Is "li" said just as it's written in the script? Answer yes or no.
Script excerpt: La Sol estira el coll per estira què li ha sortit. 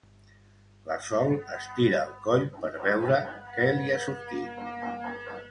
yes